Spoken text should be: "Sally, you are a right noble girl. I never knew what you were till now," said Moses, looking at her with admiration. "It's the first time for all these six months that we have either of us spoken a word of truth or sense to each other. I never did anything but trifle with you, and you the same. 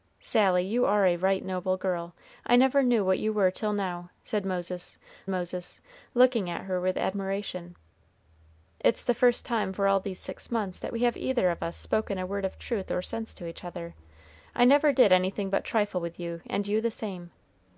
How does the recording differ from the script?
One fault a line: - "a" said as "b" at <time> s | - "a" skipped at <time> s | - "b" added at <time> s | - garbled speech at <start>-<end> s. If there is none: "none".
- "Moses" added at 5.3 s